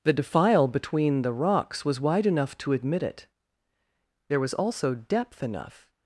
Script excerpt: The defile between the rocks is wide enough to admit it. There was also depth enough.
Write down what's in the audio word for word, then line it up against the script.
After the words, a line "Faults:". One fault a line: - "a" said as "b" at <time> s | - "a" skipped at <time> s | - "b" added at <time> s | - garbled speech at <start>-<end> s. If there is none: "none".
The defile between the rocks was wide enough to admit it. There was also depth enough.
Faults:
- "is" said as "was" at 1.9 s